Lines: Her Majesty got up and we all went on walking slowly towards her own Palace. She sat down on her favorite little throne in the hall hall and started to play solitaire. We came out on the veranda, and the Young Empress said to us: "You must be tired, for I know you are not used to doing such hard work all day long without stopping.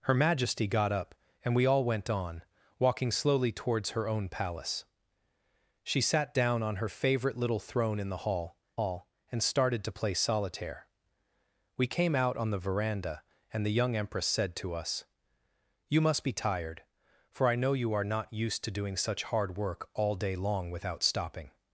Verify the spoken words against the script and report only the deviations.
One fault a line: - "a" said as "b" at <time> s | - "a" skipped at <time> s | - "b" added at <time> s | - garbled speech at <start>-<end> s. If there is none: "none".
none